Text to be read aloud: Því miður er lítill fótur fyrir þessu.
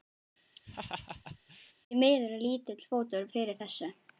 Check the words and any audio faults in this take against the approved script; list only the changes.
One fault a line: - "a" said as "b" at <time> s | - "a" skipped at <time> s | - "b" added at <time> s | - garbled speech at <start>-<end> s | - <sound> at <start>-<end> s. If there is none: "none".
- laugh at 0.6-1.7 s